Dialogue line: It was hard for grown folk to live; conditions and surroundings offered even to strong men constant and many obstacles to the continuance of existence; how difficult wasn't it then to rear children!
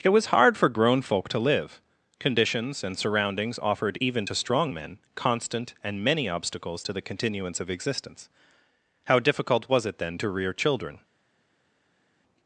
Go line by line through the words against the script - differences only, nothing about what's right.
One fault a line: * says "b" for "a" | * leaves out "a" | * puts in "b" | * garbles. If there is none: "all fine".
* says "was" for "wasn't"